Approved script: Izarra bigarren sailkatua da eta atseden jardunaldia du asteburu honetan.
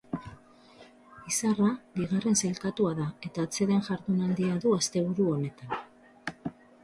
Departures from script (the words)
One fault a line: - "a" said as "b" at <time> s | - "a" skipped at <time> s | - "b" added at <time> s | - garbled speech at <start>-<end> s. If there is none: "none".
none